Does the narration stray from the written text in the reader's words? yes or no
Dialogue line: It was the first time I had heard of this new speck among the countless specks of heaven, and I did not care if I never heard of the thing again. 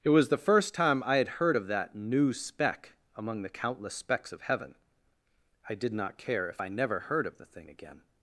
yes